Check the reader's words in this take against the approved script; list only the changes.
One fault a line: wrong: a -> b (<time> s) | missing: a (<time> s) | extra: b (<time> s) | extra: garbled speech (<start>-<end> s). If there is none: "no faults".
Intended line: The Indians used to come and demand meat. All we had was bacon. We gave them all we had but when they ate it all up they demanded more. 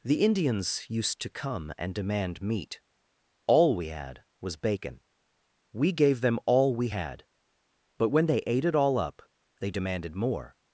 no faults